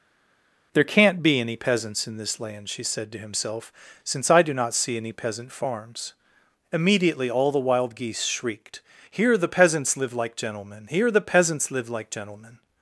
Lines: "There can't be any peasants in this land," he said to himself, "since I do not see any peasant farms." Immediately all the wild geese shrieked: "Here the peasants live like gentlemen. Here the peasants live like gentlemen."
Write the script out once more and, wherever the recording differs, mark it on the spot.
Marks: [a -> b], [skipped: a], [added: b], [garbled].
"There can't be any peasants in this land," [he -> she] said to himself, "since I do not see any peasant farms." Immediately all the wild geese shrieked: "Here the peasants live like gentlemen. Here the peasants live like gentlemen."